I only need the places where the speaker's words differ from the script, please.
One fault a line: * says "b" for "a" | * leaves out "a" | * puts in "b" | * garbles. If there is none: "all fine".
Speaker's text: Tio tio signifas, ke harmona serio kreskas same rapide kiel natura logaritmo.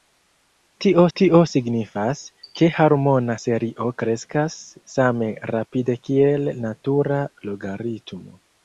all fine